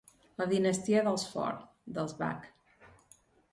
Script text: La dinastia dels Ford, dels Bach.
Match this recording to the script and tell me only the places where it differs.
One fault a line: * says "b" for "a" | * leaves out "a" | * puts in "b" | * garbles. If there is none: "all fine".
all fine